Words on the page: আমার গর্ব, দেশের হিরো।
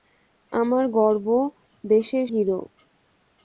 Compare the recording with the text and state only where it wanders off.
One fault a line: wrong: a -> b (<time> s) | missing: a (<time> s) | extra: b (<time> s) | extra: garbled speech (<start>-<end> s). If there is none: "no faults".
no faults